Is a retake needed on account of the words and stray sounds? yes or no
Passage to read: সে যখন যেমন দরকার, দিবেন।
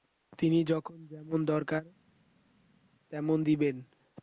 yes